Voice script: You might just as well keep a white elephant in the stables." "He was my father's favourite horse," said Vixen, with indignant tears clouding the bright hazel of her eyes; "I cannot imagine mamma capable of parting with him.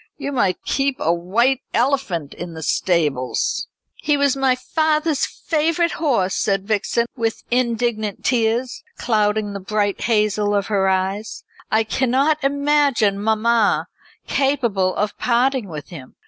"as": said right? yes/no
no